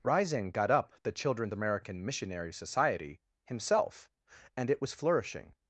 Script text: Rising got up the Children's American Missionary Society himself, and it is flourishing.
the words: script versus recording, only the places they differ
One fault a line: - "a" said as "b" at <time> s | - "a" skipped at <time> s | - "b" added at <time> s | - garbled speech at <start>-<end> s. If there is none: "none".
- "is" said as "was" at 4.8 s